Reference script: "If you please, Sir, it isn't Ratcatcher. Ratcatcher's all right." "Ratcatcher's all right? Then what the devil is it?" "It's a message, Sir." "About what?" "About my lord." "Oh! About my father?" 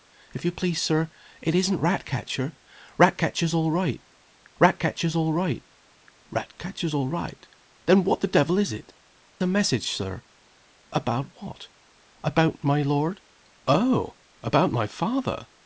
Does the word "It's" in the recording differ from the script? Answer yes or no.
yes